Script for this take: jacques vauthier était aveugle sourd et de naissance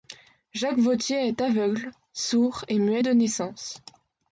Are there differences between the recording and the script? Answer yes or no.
yes